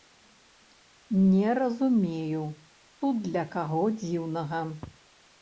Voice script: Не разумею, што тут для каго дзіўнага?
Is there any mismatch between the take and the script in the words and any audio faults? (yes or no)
yes